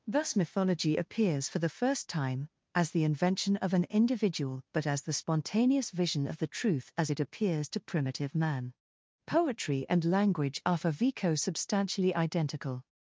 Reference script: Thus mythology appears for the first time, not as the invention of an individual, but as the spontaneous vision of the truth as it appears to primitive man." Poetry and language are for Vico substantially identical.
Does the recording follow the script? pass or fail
fail